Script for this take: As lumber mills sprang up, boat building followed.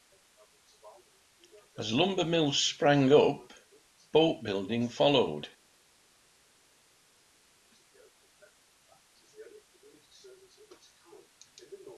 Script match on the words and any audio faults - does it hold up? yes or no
yes